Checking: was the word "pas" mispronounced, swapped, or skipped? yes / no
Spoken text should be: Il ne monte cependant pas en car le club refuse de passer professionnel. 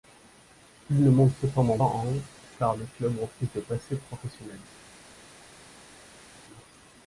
yes